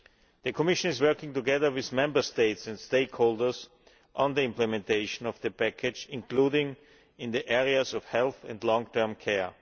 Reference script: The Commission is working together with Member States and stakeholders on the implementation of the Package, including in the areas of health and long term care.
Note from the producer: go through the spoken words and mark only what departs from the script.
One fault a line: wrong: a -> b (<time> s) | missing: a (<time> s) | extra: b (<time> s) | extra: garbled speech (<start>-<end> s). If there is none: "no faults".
no faults